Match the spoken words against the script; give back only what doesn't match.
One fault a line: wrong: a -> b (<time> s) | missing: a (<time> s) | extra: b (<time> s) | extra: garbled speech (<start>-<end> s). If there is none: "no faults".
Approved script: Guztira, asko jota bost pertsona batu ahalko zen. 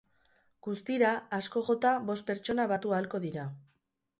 wrong: zen -> dira (3.3 s)